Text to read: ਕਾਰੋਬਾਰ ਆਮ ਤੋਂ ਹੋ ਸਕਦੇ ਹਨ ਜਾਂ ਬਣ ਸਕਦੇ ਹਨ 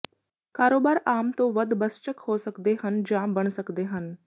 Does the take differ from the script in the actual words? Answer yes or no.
yes